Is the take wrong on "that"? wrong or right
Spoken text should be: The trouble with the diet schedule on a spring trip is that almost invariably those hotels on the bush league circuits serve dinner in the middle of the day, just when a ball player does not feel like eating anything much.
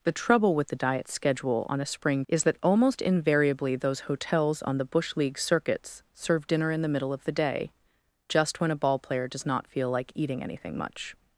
right